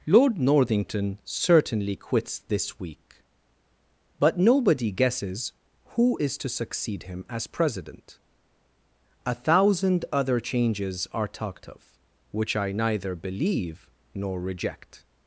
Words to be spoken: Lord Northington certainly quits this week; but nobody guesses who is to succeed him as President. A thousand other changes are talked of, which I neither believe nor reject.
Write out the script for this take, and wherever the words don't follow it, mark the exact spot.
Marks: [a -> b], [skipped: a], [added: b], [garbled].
Lord Northington certainly quits this week; but nobody guesses who is to succeed him as President. A thousand other changes are talked of, which I neither believe nor reject.